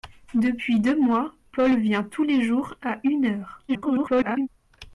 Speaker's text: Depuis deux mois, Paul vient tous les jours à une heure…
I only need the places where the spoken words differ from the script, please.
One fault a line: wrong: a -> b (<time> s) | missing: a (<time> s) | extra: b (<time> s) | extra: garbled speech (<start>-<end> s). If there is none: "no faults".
extra: garbled speech (3.7-4.5 s)